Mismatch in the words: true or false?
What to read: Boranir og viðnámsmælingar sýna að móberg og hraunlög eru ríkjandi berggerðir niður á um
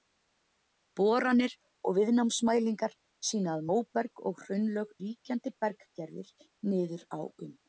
true